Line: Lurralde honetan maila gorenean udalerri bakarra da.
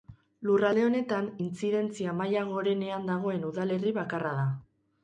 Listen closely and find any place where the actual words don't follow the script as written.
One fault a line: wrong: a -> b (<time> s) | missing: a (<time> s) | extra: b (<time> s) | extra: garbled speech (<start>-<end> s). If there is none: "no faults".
extra: intzidentzia (1.5 s)
extra: dagoen (3.1 s)